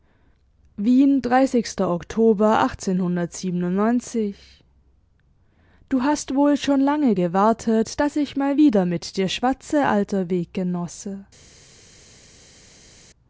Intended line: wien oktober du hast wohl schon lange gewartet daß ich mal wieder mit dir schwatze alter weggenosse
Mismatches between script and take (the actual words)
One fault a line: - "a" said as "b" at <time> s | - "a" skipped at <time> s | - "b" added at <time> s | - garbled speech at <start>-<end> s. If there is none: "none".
none